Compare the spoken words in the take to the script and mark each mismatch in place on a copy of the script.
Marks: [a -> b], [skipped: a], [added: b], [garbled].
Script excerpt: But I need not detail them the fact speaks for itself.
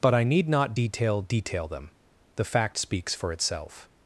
But I need not detail [added: detail] them the fact speaks for itself.